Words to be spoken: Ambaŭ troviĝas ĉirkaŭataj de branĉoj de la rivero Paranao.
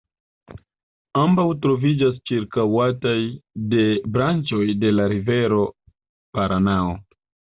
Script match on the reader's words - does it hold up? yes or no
yes